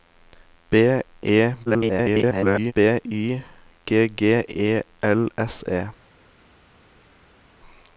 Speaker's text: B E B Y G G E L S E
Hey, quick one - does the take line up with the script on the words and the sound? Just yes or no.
no